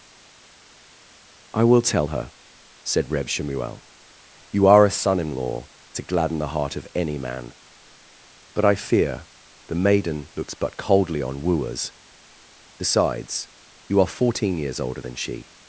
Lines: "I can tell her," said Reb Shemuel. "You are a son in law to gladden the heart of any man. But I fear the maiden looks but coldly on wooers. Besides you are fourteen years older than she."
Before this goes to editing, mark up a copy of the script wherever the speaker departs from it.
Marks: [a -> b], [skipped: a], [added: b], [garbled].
"I [can -> will] tell her," said Reb Shemuel. "You are a son in law to gladden the heart of any man. But I fear the maiden looks but coldly on wooers. Besides you are fourteen years older than she."